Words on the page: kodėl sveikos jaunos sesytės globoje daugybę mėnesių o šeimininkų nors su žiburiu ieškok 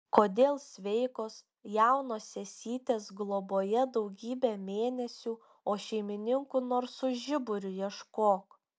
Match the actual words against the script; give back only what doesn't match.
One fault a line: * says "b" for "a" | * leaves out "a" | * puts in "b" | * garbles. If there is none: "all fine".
all fine